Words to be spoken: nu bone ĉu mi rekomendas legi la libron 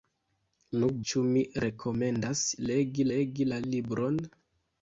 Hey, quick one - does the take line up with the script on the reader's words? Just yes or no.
no